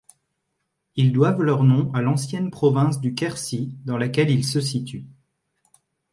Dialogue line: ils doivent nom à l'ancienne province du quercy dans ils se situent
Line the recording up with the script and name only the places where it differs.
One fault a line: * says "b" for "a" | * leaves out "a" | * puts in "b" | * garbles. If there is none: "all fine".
* puts in "leur"
* puts in "laquelle"